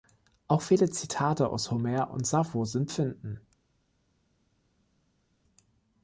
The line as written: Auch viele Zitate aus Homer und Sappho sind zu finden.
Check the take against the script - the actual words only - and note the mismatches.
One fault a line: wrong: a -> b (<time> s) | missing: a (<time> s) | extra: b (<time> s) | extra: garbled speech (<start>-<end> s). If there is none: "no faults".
missing: zu (2.9 s)